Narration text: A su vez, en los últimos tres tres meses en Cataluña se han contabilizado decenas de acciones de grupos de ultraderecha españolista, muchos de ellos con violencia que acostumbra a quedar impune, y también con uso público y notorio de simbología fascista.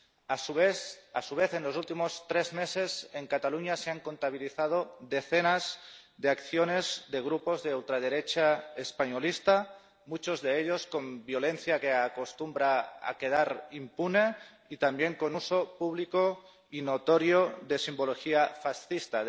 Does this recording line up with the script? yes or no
no